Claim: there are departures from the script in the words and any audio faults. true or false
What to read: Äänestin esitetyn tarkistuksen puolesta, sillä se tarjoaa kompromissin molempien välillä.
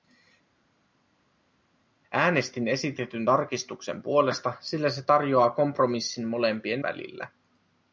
false